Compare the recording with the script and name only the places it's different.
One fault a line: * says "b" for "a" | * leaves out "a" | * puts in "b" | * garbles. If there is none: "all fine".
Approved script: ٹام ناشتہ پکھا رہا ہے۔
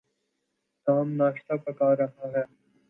all fine